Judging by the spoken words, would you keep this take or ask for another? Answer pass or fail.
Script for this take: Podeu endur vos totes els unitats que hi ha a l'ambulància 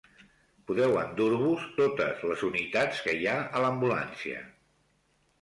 fail